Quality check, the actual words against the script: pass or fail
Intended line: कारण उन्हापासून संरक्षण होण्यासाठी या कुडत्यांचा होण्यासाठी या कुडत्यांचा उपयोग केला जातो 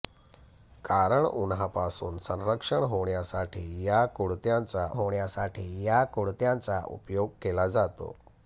pass